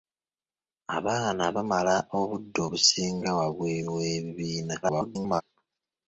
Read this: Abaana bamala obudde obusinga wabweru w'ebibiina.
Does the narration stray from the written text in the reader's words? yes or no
yes